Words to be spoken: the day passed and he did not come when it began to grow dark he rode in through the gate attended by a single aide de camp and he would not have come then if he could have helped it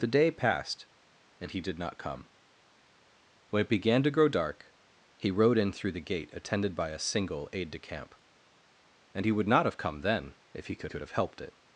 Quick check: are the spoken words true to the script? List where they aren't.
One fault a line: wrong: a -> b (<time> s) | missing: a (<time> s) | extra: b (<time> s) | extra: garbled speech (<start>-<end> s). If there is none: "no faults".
extra: could (10.9 s)